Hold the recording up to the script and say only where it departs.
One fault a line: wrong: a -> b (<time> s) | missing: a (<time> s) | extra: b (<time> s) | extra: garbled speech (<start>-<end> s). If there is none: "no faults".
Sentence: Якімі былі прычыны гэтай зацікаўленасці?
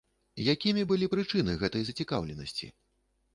no faults